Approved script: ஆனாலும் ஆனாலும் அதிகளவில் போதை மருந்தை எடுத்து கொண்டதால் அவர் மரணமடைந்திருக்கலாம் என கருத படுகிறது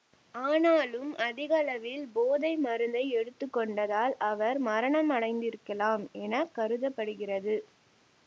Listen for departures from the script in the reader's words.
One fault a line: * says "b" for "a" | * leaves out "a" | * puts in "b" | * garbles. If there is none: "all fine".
* leaves out "ஆனாலும்"